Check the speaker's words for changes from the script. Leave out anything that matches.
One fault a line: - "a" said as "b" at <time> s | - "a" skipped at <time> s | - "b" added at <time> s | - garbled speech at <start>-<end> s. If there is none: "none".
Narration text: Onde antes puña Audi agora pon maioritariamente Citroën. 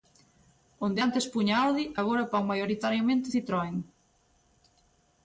none